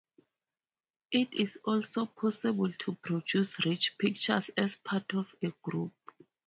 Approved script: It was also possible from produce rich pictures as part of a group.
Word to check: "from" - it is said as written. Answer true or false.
false